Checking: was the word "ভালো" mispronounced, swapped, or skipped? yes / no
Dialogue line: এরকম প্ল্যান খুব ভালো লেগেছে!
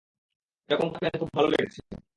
no